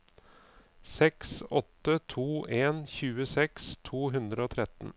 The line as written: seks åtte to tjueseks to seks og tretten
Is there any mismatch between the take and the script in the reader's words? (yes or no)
yes